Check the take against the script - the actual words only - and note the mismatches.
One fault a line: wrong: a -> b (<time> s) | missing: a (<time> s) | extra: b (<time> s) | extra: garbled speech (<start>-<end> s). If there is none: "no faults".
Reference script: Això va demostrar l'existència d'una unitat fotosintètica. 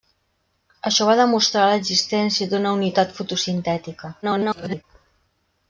extra: garbled speech (4.2-4.8 s)